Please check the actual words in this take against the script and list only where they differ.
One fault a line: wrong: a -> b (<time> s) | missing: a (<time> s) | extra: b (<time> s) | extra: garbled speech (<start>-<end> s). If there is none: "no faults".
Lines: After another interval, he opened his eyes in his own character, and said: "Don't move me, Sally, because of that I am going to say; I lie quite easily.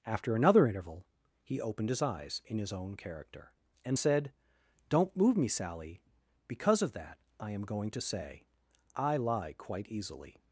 no faults